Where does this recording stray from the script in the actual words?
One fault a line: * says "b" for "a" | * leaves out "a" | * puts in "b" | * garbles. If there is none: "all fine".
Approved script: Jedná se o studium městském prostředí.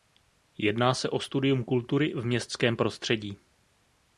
* puts in "kultury v"